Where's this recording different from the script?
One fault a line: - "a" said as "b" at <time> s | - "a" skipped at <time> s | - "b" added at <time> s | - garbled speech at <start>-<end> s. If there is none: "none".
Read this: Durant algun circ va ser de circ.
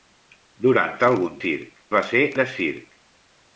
none